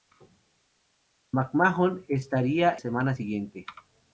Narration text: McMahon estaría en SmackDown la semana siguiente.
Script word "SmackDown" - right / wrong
wrong